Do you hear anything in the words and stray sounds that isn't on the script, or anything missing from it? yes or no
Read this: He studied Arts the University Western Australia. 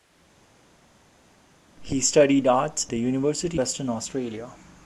no